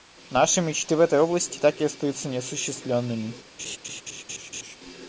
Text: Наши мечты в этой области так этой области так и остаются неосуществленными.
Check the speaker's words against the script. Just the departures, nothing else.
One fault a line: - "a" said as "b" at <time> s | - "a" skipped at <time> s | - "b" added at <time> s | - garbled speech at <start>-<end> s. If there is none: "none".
- "этой области так" skipped at 1.8 s